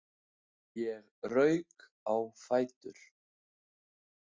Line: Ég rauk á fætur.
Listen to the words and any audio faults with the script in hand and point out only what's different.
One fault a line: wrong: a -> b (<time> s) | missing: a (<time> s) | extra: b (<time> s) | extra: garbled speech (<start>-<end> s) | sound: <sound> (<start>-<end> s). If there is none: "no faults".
no faults